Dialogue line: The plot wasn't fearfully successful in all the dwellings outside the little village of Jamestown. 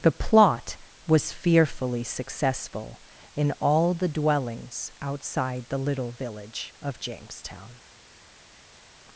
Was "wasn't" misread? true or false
true